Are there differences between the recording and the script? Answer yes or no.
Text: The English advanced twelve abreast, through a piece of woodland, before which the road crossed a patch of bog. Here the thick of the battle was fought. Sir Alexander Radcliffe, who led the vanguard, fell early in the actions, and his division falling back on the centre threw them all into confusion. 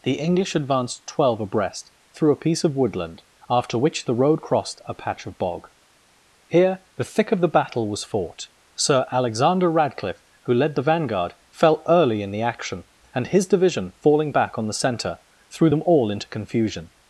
yes